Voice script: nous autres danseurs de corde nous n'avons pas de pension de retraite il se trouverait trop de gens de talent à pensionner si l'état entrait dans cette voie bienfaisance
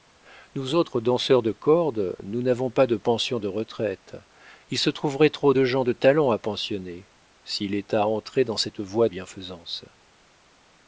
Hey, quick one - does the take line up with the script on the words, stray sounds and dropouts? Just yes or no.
yes